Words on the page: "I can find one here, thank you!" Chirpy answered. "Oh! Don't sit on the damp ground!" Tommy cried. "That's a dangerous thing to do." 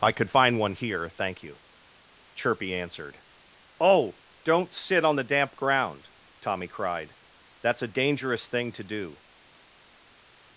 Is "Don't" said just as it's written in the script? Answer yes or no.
yes